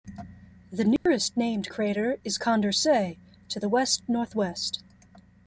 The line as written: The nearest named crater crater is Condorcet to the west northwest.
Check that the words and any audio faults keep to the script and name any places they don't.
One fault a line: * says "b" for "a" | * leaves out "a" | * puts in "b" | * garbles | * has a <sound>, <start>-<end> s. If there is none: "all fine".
* has a dropout, 1.0-1.1 s
* leaves out "crater"